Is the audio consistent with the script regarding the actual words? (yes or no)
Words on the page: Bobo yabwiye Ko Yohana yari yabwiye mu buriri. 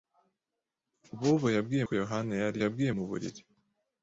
yes